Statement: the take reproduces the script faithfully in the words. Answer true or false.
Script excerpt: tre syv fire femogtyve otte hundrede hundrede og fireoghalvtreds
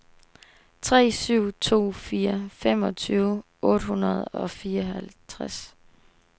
false